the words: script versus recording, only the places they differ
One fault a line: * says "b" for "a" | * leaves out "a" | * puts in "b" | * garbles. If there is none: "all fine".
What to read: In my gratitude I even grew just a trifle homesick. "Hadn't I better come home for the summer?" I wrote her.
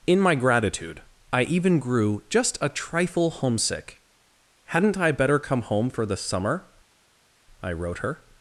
all fine